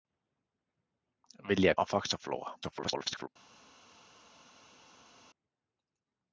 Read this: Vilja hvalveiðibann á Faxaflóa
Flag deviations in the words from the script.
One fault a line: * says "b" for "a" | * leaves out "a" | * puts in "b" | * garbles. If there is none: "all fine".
* leaves out "hvalveiðibann"
* garbles